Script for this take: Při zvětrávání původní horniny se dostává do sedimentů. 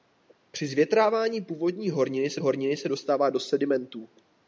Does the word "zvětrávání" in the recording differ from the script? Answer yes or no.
no